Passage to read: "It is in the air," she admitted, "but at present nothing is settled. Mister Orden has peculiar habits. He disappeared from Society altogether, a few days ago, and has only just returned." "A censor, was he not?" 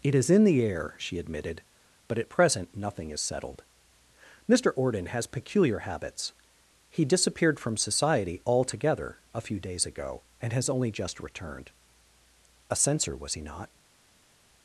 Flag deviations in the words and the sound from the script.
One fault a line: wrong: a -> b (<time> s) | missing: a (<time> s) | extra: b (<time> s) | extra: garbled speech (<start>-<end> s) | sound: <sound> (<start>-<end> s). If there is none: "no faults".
no faults